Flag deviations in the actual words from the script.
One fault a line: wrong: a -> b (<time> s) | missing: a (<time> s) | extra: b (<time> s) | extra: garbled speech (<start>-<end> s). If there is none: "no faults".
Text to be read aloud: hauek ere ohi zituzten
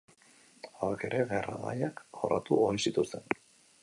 extra: gerra gaiak jorratu (1.3 s)